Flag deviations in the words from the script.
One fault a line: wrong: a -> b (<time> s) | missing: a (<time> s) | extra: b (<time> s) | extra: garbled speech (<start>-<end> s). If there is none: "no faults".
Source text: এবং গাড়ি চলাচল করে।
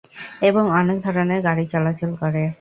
extra: অনেক ধরনের (0.8 s)